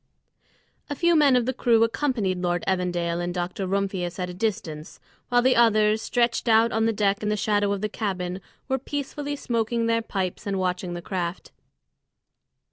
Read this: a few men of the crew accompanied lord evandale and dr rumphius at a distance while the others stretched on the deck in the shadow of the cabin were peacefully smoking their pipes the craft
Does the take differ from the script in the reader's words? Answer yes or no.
yes